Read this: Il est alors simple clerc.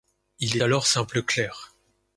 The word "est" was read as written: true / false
false